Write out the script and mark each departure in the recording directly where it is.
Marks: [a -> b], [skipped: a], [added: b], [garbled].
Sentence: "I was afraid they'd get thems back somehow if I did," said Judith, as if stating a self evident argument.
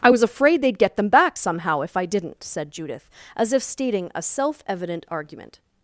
"I was afraid they'd get [thems -> them] back somehow if I [did," -> didn't] said Judith, as if stating a self evident argument.